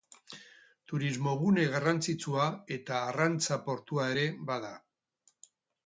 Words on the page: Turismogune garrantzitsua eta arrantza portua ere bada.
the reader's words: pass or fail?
pass